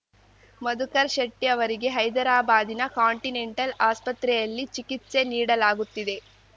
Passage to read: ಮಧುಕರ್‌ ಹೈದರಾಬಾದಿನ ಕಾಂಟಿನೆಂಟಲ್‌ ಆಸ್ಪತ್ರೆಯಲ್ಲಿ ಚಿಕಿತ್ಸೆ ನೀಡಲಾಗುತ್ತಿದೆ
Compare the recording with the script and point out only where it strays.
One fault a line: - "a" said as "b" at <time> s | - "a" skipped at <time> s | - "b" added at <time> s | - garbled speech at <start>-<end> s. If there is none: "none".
- "ಶೆಟ್ಟಿಅವರಿಗೆ" added at 1.1 s